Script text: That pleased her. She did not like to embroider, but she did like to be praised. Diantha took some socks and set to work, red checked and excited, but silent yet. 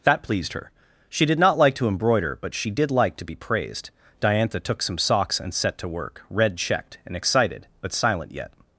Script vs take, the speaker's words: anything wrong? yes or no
no